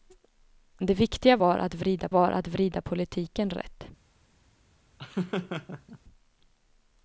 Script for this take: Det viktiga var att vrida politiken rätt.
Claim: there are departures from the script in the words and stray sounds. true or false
true